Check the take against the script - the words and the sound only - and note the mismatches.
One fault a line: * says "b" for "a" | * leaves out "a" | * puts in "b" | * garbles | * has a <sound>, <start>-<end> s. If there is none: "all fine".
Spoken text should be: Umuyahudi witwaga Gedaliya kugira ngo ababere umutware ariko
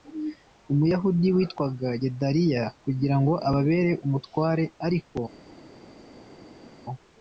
all fine